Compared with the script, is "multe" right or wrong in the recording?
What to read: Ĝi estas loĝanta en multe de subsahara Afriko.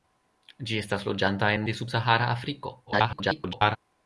wrong